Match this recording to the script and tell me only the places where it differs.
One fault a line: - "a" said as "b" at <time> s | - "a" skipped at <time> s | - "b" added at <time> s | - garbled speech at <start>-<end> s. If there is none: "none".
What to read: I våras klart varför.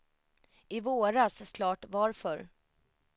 none